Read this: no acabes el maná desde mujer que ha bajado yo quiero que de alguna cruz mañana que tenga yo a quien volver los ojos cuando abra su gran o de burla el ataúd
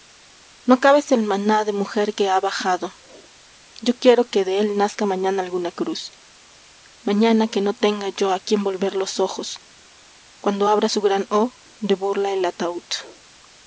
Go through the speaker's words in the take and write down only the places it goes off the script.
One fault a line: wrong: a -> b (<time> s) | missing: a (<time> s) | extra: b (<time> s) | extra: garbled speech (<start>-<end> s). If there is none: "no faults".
wrong: desde -> de (1.6 s)
extra: él nazca mañana (4.6 s)
extra: no (7.6 s)